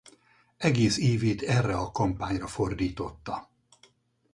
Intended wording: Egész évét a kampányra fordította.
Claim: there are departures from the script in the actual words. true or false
true